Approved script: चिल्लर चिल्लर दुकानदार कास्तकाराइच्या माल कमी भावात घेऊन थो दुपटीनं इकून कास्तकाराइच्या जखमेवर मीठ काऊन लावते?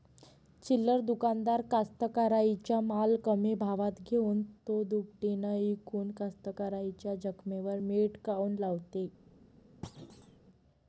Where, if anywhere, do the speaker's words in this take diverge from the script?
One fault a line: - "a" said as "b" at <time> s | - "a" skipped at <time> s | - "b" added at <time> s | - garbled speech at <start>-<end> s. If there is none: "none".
- "चिल्लर" skipped at 1.0 s